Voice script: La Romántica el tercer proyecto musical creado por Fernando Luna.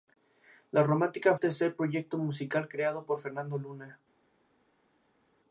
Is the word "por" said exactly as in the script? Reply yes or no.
yes